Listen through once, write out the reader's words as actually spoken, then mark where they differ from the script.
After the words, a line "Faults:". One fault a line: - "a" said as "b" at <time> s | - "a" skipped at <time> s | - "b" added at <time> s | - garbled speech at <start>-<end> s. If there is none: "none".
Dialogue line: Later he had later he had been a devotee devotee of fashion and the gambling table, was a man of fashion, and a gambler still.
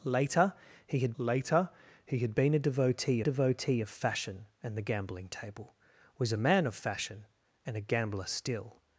Later he had later he had been a devotee devotee of fashion and the gambling table, was a man of fashion, and a gambler still.
Faults:
none